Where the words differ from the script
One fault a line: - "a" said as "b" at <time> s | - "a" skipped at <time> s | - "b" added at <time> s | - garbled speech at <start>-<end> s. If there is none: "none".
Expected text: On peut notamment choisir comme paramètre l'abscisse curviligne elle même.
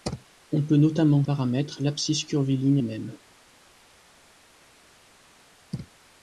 - "choisir comme" skipped at 1.2 s
- "elle" skipped at 2.8 s